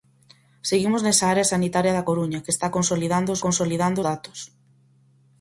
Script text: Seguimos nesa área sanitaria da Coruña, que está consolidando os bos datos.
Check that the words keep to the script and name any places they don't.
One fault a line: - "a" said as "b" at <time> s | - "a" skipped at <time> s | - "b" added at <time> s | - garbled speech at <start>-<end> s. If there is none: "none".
- "bos" said as "consolidando" at 3.5 s